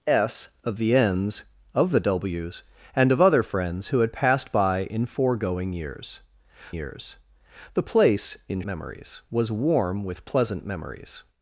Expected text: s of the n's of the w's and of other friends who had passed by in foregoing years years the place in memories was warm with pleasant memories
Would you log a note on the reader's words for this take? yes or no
no